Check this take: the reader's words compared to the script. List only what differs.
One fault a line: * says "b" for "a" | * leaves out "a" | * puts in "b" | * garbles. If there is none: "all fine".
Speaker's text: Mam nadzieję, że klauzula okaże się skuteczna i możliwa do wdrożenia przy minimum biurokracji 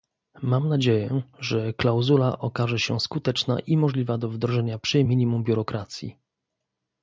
all fine